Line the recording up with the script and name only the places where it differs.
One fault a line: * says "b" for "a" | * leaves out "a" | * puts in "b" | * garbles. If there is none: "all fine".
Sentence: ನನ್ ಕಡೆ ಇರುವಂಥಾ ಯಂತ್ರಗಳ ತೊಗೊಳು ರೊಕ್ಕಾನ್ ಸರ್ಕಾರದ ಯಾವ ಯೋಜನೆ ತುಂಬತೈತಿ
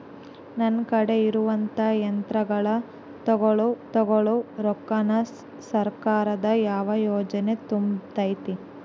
* puts in "ತೊಗೊಳು"